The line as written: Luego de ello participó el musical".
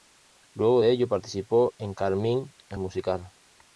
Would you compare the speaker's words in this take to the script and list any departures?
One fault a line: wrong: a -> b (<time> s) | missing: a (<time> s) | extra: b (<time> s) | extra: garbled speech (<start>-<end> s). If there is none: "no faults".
extra: en Carmín (1.8 s)